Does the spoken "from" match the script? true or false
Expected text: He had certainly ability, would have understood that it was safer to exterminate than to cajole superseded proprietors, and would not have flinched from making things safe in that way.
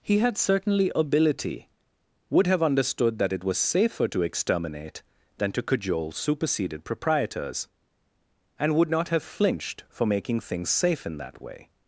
false